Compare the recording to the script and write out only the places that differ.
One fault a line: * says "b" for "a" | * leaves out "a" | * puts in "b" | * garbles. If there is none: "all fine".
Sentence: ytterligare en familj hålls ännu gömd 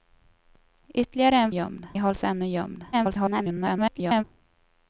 * says "gömd" for "familj"
* garbles